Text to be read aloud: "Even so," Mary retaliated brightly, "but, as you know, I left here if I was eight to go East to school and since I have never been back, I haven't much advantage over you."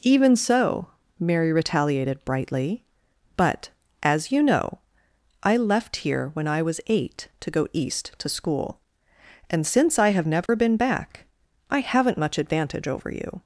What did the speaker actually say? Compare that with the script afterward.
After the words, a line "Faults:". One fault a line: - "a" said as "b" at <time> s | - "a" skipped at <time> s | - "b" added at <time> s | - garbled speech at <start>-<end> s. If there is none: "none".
"Even so," Mary retaliated brightly, "but, as you know, I left here when I was eight to go East to school and since I have never been back, I haven't much advantage over you."
Faults:
- "if" said as "when" at 6.3 s